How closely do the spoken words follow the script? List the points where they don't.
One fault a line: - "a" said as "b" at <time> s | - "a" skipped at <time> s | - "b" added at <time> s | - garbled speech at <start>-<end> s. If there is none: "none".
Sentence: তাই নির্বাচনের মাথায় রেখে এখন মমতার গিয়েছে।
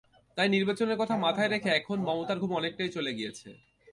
- "কথা" added at 1.0 s
- "ঘুম অনেকটাই চলে" added at 2.4 s